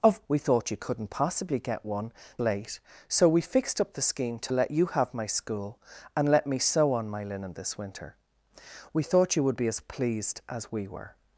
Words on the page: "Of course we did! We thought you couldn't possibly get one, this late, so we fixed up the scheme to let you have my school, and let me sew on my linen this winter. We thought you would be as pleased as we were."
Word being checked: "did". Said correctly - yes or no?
no